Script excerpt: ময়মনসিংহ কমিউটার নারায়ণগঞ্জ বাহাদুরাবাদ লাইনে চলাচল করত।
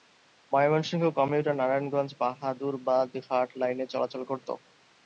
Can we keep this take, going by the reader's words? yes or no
no